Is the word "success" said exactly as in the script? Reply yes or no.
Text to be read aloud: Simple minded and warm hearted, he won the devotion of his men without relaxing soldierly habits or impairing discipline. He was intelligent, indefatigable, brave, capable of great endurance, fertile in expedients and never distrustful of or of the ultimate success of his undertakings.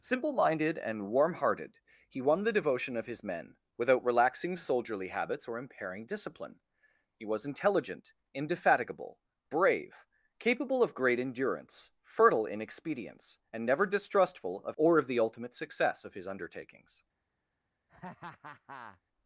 yes